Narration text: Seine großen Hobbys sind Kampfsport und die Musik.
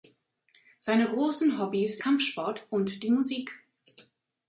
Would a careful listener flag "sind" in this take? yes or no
yes